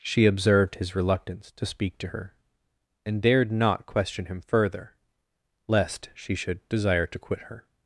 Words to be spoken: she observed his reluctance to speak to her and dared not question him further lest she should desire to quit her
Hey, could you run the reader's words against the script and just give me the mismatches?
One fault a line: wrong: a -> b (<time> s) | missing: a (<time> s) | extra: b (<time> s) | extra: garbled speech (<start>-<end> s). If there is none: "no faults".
no faults